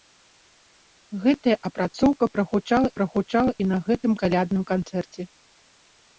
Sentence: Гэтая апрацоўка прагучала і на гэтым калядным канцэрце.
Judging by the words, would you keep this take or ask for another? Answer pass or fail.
fail